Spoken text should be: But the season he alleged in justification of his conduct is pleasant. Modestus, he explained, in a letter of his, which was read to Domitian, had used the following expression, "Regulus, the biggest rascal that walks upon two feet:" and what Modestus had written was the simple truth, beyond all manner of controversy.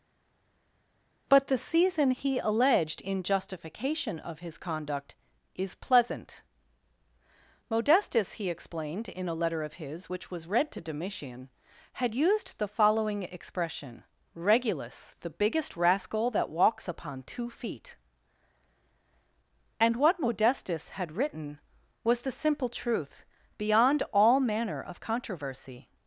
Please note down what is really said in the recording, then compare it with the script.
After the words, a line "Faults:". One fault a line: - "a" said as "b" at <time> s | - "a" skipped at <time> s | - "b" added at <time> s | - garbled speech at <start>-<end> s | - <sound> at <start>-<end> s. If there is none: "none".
But the season he alleged in justification of his conduct is pleasant. Modestus, he explained, in a letter of his, which was read to Domitian, had used the following expression, "Regulus, the biggest rascal that walks upon two feet:" and what Modestus had written was the simple truth, beyond all manner of controversy.
Faults:
none